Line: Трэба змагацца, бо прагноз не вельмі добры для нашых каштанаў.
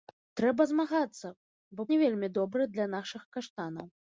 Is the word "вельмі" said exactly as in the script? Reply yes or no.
yes